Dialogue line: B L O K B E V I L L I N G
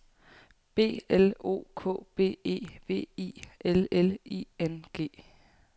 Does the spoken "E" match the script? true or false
true